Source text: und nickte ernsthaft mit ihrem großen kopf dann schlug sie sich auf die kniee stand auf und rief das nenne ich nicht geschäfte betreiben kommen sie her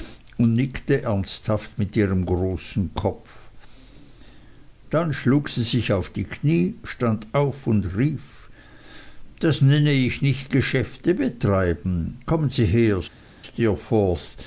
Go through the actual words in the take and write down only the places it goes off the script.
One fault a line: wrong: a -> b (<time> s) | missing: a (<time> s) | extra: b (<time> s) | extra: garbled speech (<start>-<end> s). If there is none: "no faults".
no faults